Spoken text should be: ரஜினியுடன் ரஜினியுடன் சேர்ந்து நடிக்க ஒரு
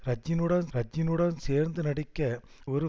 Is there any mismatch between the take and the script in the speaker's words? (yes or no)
no